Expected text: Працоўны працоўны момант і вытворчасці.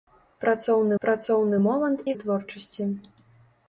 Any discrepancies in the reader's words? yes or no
no